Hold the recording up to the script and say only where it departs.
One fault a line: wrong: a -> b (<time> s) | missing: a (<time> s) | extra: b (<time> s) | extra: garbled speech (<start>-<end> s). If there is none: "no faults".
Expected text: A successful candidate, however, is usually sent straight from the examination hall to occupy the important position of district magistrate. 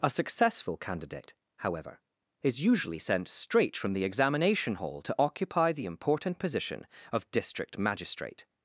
no faults